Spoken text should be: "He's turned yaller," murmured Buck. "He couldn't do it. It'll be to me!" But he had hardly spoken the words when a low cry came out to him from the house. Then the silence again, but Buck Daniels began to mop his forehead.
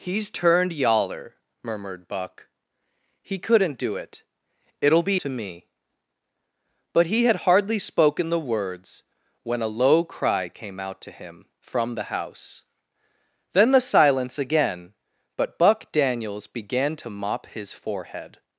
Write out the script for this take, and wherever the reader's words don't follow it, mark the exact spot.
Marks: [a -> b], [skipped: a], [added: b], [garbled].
"He's turned yaller," murmured Buck. "He couldn't do it. It'll be to me!" But he had hardly spoken the words when a low cry came out to him from the house. Then the silence again, but Buck Daniels began to mop his forehead.